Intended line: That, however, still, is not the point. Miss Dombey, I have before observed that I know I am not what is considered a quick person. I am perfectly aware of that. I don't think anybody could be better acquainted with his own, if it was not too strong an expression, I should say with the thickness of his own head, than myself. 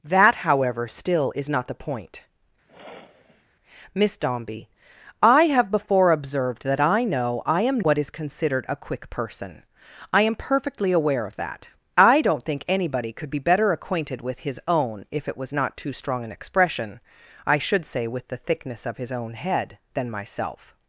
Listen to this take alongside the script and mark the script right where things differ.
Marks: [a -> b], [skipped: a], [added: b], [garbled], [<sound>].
That, however, still, is not the point. [sniff] Miss Dombey, I have before observed that I know I am [skipped: not] what is considered a quick person. I am perfectly aware of that. I don't think anybody could be better acquainted with his own, if it was not too strong an expression, I should say with the thickness of his own head, than myself.